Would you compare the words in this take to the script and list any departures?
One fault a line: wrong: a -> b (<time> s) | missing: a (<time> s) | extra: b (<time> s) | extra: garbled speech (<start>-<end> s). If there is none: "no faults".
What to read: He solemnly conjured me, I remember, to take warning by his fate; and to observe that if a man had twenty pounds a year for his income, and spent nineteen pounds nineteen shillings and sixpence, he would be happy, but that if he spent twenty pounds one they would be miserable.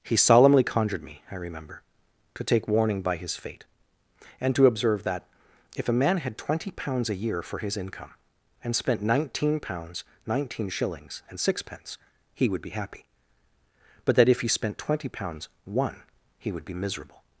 wrong: they -> he (16.4 s)